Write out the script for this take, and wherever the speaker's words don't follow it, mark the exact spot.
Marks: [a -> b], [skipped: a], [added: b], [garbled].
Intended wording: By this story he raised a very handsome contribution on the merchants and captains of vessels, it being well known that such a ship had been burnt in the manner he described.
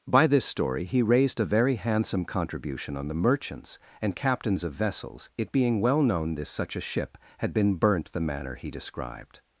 By this story he raised a very handsome contribution on the merchants and captains of vessels, it being well known [that -> this] such a ship had been burnt [skipped: in] the manner he described.